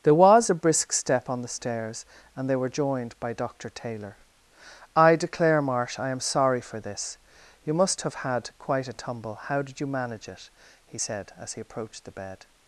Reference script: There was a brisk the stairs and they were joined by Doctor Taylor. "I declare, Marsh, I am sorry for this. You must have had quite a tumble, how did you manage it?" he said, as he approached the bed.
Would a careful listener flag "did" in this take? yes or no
no